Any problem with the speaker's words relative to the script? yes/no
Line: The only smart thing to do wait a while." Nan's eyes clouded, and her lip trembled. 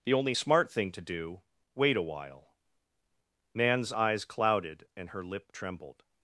no